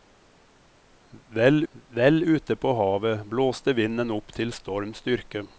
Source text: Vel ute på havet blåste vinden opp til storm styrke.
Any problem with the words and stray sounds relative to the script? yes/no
yes